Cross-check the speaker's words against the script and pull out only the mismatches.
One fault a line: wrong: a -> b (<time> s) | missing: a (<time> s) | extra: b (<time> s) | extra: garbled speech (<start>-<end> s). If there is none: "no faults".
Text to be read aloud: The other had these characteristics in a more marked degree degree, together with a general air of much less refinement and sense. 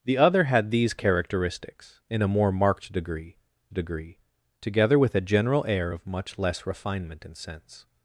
no faults